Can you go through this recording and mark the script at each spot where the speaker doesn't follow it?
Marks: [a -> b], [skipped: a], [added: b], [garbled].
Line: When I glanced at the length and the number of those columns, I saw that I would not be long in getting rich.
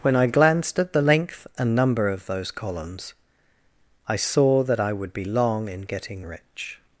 When I glanced at the length and [skipped: the] number of those columns, I saw that I would [skipped: not] be long in getting rich.